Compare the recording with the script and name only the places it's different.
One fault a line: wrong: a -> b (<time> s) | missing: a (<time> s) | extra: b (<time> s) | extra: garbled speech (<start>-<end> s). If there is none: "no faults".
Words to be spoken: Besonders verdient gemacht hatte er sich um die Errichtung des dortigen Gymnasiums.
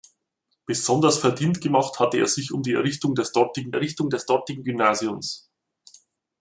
extra: Errichtung des dortigen (3.7 s)